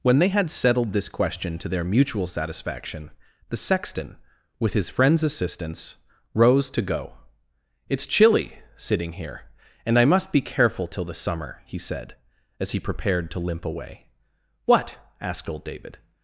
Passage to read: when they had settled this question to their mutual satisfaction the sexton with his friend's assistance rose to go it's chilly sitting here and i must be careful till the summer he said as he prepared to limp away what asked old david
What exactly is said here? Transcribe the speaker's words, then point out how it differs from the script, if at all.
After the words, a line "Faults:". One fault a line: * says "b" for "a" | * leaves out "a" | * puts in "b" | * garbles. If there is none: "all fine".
when they had settled this question to their mutual satisfaction the sexton with his friend's assistance rose to go it's chilly sitting here and i must be careful till the summer he said as he prepared to limp away what asked old david
Faults:
all fine